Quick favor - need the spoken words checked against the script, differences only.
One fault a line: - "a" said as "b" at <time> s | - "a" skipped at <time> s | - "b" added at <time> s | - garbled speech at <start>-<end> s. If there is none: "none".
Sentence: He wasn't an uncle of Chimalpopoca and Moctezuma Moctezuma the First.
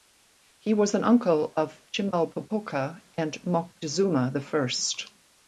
- "wasn't" said as "was" at 0.7 s
- "Moctezuma" skipped at 4.3 s